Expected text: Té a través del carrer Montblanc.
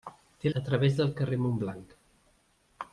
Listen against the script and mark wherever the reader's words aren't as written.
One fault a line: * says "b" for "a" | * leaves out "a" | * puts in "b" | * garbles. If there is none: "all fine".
all fine